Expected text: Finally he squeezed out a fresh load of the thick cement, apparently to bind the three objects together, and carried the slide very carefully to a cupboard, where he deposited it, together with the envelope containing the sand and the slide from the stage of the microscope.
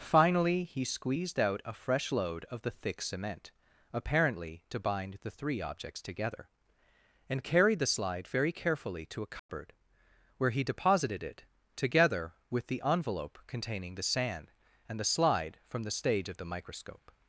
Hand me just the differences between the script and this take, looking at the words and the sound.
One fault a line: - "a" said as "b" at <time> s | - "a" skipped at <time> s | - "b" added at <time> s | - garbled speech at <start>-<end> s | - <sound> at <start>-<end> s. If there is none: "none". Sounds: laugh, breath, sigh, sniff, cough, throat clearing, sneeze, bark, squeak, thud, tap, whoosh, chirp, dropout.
- dropout at 9.4-9.5 s